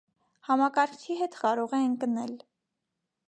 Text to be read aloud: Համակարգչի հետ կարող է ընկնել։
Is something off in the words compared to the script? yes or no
no